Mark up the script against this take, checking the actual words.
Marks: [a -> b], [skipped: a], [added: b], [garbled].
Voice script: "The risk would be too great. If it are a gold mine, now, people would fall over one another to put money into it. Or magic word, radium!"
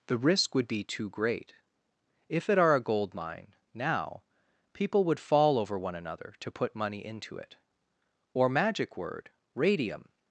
"The risk would be too great. If it are a gold mine, now, people would fall over one another to put money into it. Or magic word, radium!"